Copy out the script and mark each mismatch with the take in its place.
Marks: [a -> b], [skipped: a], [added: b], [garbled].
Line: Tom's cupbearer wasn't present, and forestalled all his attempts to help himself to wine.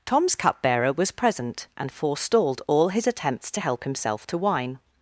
Tom's cupbearer [wasn't -> was] present, and forestalled all his attempts to help himself to wine.